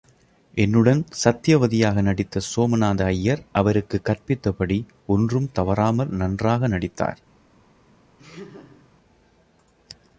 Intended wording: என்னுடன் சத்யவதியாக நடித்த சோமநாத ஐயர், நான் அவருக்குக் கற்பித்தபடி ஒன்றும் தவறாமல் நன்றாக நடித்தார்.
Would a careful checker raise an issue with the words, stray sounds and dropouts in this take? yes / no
yes